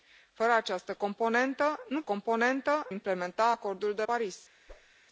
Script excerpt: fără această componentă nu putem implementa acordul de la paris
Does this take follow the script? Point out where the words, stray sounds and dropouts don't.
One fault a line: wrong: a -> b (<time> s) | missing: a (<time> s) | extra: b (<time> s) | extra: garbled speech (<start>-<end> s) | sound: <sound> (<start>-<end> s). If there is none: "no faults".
wrong: putem -> componentă (2.0 s)
missing: la (4.0 s)
sound: whoosh (4.7-4.9 s)